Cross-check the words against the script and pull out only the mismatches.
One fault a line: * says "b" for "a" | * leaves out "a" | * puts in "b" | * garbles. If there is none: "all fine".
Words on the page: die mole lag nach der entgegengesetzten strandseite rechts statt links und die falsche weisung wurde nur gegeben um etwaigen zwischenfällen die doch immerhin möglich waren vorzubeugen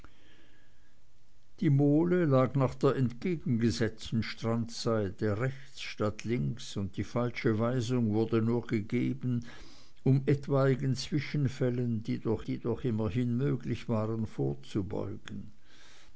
* puts in "die doch"